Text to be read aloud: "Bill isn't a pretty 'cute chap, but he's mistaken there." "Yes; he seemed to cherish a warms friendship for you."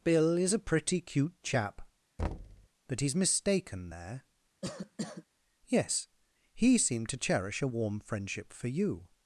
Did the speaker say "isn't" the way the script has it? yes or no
no